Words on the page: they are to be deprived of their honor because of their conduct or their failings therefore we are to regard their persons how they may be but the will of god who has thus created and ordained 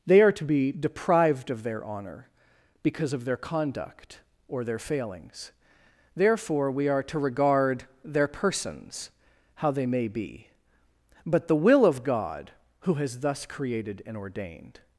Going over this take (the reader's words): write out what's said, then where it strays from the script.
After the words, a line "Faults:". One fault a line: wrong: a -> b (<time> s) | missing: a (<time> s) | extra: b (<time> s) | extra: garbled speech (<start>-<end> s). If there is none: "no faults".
they are to be deprived of their honor because of their conduct or their failings therefore we are to regard their persons how they may be but the will of god who has thus created and ordained
Faults:
no faults